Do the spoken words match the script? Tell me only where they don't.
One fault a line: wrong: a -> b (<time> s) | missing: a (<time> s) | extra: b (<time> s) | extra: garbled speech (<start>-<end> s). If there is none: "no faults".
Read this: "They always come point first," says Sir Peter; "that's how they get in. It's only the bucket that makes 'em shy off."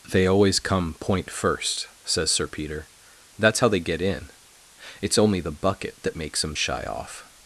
no faults